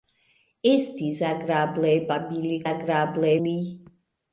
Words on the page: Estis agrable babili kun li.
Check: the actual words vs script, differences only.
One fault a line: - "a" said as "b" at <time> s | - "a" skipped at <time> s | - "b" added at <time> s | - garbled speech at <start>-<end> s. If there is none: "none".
- "kun" said as "agrable" at 2.7 s